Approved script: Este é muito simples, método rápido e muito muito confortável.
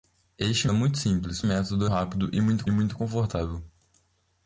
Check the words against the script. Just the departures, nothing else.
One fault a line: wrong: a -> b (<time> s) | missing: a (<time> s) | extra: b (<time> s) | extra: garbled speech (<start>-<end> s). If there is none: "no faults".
no faults